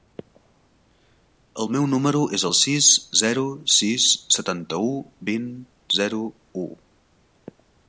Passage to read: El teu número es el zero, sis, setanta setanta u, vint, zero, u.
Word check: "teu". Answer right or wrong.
wrong